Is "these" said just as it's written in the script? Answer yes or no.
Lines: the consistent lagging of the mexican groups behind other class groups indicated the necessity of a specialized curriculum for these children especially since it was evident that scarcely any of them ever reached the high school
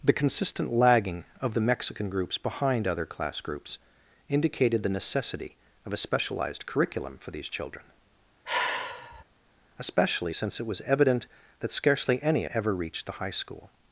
yes